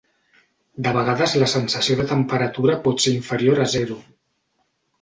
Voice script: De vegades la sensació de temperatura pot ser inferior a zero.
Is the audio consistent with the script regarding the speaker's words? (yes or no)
yes